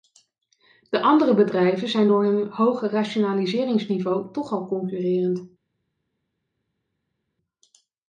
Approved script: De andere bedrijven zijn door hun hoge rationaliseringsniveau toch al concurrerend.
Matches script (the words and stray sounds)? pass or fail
pass